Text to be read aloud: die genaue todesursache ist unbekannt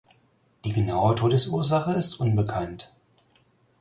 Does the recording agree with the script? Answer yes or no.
yes